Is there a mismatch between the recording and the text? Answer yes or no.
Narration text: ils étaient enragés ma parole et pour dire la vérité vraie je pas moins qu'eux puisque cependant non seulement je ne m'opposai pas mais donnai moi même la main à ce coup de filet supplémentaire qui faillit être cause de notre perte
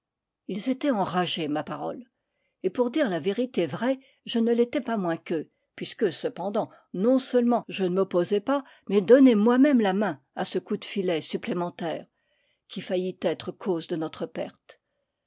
yes